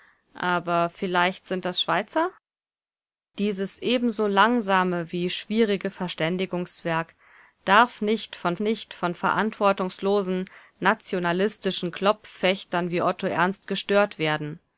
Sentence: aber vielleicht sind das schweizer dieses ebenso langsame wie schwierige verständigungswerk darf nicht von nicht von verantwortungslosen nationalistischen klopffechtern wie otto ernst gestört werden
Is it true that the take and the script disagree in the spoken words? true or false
false